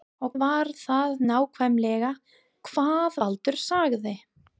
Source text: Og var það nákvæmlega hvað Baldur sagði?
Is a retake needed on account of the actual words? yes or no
no